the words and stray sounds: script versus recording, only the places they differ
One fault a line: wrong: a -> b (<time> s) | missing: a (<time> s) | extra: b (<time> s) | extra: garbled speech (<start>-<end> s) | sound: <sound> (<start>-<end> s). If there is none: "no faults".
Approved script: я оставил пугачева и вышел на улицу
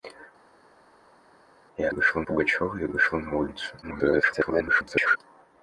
wrong: оставил -> вышел (1.9 s)
extra: garbled speech (3.8-5.2 s)